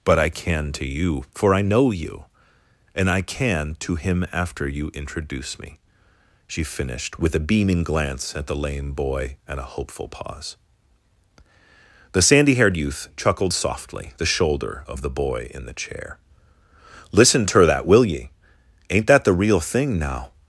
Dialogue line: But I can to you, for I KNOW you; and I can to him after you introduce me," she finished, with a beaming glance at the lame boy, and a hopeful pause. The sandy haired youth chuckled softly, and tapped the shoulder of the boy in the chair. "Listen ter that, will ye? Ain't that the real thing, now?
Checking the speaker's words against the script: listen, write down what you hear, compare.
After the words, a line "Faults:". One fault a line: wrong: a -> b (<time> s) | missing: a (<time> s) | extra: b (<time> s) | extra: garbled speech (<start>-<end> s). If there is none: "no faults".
But I can to you, for I KNOW you; and I can to him after you introduce me," she finished, with a beaming glance at the lame boy, and a hopeful pause. The sandy haired youth chuckled softly, the shoulder of the boy in the chair. "Listen ter that, will ye? Ain't that the real thing, now?
Faults:
missing: and tapped (14.1 s)